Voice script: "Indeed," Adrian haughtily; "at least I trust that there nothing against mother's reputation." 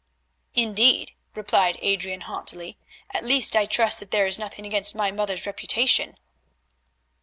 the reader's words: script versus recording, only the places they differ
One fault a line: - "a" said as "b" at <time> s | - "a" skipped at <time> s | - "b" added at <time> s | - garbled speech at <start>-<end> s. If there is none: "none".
- "replied" added at 1.4 s
- "is" added at 4.2 s
- "my" added at 5.0 s